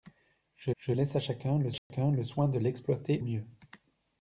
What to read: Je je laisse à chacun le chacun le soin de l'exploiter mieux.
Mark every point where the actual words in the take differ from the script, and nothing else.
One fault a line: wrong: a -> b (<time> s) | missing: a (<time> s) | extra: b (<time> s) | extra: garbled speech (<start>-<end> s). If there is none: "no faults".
no faults